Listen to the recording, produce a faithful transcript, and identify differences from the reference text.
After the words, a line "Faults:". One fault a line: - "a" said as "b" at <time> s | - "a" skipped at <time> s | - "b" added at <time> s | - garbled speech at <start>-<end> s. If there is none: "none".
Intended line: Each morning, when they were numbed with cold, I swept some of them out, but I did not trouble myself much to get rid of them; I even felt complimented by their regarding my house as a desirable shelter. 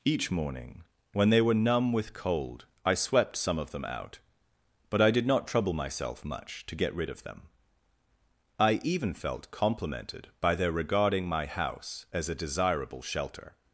Each morning, when they were numb with cold, I swept some of them out, but I did not trouble myself much to get rid of them; I even felt complimented by their regarding my house as a desirable shelter.
Faults:
- "numbed" said as "numb" at 1.5 s